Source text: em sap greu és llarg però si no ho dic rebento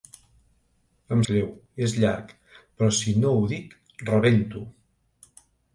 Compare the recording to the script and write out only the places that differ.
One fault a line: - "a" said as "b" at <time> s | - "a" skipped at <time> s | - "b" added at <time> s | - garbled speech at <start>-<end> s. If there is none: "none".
- "sap" skipped at 1.2 s